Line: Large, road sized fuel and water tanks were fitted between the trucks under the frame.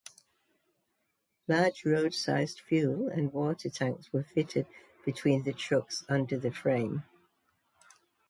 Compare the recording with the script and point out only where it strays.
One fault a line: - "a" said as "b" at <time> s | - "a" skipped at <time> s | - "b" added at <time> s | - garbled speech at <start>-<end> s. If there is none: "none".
none